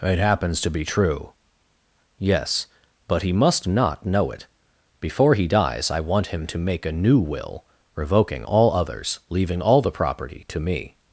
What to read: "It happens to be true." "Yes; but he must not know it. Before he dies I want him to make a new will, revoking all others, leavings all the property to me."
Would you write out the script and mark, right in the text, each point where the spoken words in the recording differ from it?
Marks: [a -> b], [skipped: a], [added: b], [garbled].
"It happens to be true." "Yes; but he must not know it. Before he dies I want him to make a new will, revoking all others, [leavings -> leaving] all the property to me."